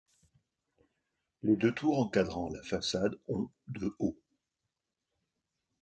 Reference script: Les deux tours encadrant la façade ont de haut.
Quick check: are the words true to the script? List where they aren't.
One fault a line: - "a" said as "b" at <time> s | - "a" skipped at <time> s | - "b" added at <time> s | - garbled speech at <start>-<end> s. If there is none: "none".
none